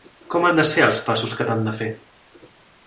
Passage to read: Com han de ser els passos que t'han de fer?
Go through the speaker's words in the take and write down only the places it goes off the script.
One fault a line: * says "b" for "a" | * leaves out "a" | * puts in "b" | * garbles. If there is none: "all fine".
all fine